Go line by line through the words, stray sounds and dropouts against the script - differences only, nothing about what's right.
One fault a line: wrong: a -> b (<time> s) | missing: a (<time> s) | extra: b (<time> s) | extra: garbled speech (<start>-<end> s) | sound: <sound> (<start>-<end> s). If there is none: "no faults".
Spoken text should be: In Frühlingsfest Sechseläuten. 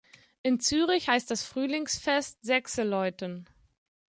extra: Zürich heißt das (0.6 s)